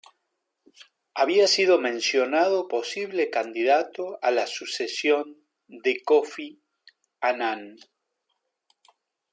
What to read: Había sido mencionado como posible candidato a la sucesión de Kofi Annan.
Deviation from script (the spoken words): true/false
true